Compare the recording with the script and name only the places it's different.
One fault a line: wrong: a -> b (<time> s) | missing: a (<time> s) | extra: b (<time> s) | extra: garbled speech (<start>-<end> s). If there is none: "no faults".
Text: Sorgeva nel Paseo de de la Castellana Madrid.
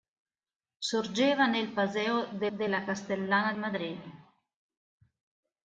no faults